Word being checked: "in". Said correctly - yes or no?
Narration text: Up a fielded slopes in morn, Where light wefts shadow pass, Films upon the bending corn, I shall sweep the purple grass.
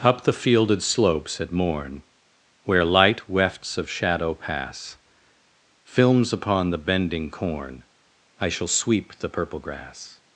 no